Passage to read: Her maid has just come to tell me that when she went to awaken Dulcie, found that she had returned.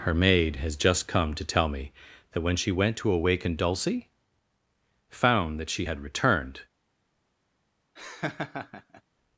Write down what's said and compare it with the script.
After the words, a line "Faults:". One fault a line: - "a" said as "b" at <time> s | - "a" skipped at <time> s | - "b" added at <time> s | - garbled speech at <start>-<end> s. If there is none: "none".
Her maid has just come to tell me that when she went to awaken Dulcie, found that she had returned.
Faults:
none